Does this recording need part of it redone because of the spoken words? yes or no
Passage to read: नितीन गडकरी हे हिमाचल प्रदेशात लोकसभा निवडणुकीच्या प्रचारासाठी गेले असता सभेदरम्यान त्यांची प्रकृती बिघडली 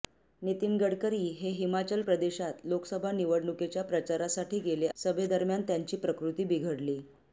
yes